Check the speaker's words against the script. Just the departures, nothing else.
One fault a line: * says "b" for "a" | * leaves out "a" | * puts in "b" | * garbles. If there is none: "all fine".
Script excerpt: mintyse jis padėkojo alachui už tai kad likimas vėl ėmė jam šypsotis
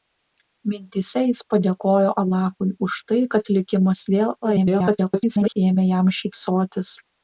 * garbles